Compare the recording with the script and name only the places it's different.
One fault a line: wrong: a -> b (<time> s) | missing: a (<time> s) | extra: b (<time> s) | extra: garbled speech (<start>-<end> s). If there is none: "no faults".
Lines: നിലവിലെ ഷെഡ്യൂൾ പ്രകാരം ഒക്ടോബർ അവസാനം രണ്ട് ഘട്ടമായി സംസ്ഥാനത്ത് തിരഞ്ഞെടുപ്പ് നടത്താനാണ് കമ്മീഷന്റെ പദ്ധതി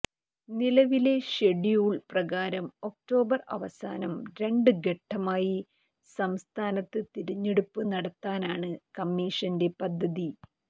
no faults